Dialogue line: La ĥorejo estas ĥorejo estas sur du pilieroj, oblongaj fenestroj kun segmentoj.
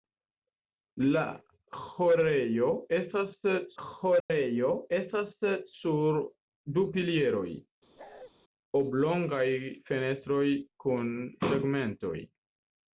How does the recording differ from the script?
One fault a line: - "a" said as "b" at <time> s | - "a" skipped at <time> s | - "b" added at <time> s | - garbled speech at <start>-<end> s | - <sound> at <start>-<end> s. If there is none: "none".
- dropout at 4.2-4.3 s
- bark at 8.0-8.3 s